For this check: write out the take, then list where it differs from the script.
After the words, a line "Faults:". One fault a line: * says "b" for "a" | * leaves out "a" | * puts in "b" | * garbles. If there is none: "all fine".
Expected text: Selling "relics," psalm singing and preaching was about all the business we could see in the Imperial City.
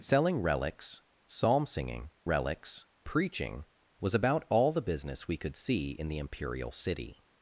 Selling "relics," psalm singing relics preaching was about all the business we could see in the Imperial City.
Faults:
* says "relics" for "and"